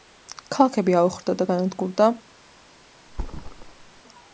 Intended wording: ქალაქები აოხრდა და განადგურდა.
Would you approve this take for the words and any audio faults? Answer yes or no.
no